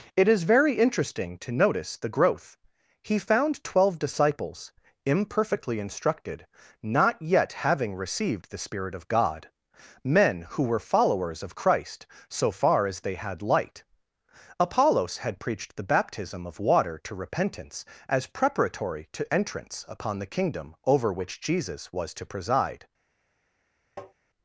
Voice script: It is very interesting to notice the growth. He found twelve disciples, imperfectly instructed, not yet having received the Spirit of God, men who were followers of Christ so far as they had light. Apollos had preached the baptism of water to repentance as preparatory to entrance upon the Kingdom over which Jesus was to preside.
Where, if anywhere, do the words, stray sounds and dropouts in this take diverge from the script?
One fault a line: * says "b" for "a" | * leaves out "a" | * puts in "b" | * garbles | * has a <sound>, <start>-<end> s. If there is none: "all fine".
* has a tap, 24.0-24.1 s